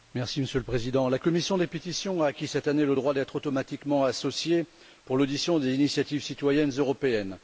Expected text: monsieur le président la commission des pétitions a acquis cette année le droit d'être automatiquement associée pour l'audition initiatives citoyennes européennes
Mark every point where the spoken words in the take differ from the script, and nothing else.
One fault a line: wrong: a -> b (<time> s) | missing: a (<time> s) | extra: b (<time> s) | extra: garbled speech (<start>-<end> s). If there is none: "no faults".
extra: des (5.6 s)